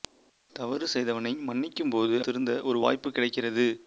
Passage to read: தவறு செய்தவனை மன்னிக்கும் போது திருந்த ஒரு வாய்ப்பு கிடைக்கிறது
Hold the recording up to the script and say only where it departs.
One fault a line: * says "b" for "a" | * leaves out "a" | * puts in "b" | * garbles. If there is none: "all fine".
all fine